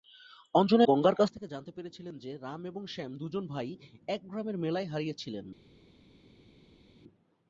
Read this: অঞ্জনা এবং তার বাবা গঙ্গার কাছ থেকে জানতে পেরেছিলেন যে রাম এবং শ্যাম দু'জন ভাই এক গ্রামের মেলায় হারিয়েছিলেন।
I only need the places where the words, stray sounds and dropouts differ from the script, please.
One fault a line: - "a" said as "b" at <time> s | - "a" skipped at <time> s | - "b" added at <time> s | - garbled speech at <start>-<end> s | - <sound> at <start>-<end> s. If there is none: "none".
- "এবং তার বাবা" skipped at 0.8 s